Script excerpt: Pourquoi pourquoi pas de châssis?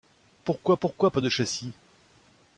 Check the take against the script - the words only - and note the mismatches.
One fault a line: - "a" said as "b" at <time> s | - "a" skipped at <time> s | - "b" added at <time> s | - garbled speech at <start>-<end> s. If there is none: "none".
none